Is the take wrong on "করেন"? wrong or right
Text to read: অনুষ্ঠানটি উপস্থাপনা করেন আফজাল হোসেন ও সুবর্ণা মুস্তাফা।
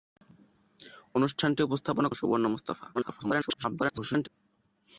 wrong